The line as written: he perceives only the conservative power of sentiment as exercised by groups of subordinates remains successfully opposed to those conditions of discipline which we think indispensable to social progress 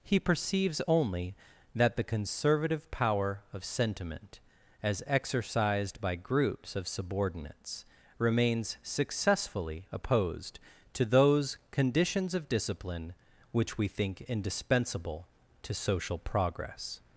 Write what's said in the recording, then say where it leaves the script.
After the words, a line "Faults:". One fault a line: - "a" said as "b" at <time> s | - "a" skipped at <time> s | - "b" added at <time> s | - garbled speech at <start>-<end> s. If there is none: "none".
he perceives only that the conservative power of sentiment as exercised by groups of subordinates remains successfully opposed to those conditions of discipline which we think indispensable to social progress
Faults:
- "that" added at 1.7 s